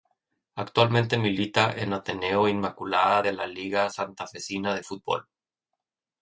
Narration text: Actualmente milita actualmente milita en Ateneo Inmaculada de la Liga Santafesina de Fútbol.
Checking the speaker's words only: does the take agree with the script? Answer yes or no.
no